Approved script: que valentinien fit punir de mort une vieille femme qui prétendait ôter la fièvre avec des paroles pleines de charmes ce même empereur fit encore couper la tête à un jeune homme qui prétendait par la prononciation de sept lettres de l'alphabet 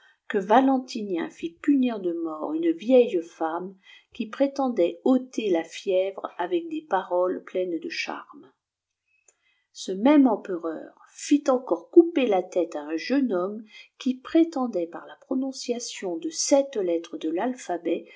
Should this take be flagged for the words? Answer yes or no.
no